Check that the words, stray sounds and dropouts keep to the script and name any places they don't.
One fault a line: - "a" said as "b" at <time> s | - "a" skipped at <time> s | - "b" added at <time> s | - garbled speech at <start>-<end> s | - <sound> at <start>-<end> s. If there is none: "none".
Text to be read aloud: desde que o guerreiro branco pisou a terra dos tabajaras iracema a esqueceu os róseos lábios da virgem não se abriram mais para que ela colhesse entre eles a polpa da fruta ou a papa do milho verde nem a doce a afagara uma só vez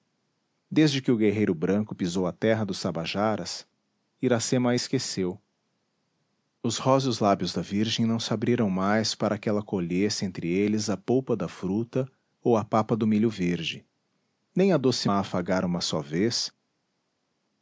none